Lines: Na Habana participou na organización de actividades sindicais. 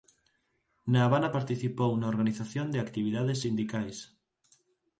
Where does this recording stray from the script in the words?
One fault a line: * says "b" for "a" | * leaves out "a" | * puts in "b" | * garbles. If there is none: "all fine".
all fine